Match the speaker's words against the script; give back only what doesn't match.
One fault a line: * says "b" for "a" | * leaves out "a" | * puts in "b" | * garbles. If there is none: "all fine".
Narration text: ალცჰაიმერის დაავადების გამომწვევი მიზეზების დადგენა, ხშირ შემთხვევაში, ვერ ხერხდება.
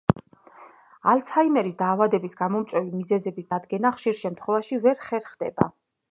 all fine